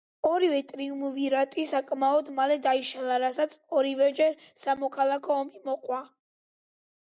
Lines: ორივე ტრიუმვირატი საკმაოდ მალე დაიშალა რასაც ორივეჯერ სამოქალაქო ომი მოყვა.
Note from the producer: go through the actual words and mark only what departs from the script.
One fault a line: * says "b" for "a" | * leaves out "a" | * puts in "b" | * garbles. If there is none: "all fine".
all fine